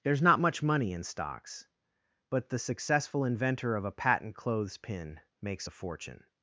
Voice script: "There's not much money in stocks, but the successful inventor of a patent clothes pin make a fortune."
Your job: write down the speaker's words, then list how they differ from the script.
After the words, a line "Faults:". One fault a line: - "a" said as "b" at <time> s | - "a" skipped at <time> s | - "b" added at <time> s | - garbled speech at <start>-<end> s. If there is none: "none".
"There's not much money in stocks, but the successful inventor of a patent clothes pin makes a fortune."
Faults:
- "make" said as "makes" at 5.4 s